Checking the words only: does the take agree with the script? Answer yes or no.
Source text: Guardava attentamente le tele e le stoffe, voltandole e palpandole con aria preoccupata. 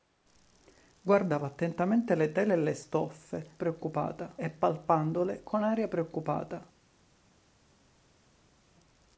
no